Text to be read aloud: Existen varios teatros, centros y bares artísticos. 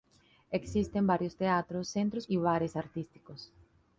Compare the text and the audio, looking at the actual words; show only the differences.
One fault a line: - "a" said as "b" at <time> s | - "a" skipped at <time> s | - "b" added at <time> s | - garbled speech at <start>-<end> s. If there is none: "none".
none